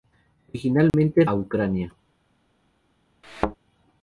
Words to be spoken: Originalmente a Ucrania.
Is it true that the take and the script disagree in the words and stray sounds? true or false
true